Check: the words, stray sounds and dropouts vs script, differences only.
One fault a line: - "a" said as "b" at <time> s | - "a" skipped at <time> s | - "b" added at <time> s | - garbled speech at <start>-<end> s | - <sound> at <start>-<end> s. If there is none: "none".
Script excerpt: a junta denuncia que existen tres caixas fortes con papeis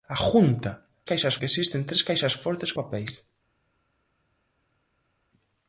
- "denuncia" said as "caixas" at 1.0 s
- "con" skipped at 2.7 s